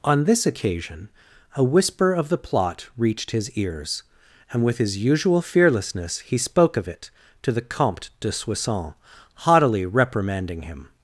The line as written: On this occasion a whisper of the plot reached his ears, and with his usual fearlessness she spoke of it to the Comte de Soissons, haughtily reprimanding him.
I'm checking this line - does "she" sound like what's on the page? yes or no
no